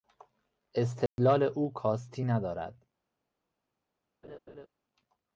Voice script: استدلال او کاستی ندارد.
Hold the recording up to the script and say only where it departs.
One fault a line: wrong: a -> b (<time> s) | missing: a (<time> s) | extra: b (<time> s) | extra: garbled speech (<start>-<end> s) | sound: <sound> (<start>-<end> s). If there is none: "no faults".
sound: dropout (1.1-1.2 s)
sound: laugh (4.2-4.7 s)